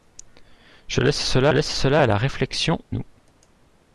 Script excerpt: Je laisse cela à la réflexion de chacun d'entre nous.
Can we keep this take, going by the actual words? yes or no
no